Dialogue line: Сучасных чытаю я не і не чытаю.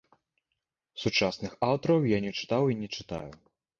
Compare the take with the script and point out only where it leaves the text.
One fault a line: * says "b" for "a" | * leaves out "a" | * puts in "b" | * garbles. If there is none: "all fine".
* says "аўтараў" for "чытаю"
* puts in "чытаў"